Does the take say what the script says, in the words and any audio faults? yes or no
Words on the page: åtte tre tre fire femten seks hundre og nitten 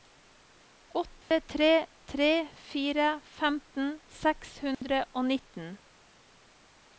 no